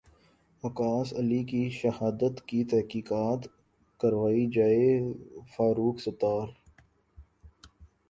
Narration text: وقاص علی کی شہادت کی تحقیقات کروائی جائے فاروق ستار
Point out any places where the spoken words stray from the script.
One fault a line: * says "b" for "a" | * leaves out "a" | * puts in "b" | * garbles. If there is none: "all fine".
all fine